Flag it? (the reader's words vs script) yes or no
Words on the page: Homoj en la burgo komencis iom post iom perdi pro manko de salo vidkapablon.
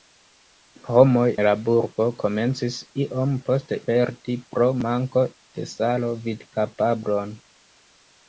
yes